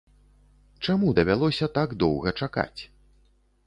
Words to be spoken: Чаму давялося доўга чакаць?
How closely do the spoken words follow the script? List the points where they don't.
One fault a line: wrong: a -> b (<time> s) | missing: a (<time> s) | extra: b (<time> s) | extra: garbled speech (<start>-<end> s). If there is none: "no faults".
extra: так (1.8 s)